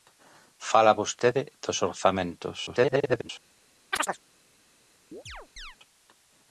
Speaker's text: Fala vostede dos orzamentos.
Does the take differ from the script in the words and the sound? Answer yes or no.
yes